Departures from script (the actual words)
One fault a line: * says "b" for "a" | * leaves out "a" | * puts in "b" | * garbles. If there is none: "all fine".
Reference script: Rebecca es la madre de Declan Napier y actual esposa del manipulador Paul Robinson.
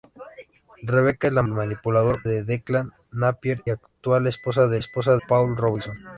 * says "manipulador" for "madre"
* leaves out "y"
* says "esposa" for "manipulador"